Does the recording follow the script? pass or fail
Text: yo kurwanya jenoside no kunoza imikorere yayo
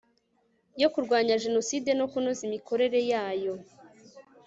pass